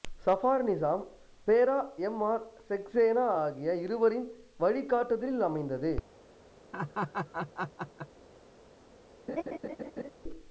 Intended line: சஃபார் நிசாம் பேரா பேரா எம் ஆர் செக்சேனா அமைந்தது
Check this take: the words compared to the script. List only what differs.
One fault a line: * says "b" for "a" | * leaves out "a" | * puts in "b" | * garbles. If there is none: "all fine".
* leaves out "பேரா"
* puts in "ஆகிய இருவரின் வழிகாட்டுதலில்"